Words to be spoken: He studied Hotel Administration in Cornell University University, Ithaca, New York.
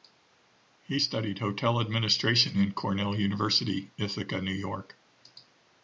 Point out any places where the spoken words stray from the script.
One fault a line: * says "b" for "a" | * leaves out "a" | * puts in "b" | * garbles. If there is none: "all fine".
* leaves out "University"